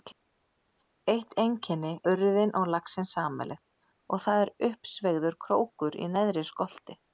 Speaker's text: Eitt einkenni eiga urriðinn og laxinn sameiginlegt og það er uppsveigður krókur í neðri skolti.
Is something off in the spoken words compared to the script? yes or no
yes